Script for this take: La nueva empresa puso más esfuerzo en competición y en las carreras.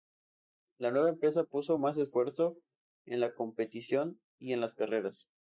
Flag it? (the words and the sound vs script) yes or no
yes